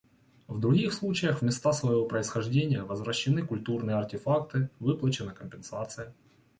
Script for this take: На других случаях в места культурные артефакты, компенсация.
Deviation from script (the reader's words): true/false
true